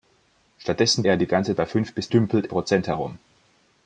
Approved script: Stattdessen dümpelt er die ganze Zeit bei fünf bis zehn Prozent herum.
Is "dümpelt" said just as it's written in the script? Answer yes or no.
no